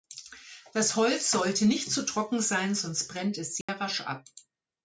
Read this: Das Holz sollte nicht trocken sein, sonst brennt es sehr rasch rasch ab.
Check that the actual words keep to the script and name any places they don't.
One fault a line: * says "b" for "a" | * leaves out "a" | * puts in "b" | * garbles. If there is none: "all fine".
* puts in "zu"
* leaves out "rasch"